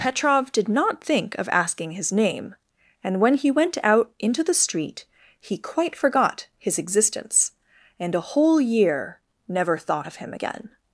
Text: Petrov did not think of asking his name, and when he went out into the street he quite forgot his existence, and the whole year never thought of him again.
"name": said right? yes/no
yes